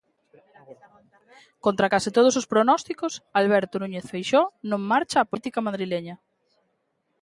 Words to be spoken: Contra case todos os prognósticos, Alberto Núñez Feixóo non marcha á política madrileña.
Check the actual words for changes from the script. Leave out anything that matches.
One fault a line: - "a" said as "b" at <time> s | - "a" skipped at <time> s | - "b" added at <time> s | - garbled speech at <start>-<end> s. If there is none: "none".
none